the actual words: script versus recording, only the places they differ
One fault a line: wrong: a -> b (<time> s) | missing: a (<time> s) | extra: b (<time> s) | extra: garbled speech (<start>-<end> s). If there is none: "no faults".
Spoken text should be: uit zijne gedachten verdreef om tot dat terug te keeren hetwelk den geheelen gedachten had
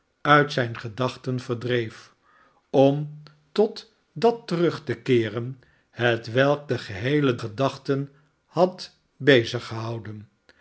no faults